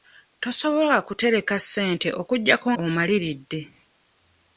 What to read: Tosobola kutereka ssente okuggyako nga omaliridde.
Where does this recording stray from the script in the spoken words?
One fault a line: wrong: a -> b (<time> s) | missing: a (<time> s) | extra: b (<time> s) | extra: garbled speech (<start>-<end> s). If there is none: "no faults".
missing: nga (2.7 s)